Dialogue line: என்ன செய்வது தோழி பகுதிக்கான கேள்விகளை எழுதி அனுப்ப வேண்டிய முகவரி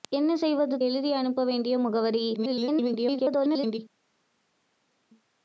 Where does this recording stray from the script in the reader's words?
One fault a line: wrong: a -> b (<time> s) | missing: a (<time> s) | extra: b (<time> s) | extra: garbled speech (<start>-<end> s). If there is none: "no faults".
missing: தோழி பகுதிக்கான கேள்விகளை (0.8 s)
extra: garbled speech (2.3-3.8 s)